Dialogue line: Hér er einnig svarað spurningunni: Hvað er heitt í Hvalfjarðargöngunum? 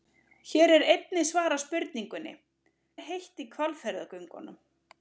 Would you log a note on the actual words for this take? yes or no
yes